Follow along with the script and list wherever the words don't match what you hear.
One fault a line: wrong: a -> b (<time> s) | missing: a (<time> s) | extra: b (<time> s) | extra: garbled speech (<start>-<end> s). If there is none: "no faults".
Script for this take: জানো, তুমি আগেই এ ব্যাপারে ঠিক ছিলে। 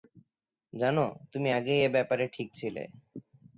no faults